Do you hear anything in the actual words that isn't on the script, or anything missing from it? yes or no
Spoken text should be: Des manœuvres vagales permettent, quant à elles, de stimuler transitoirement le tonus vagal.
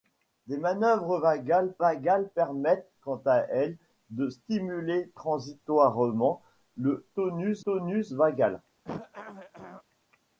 yes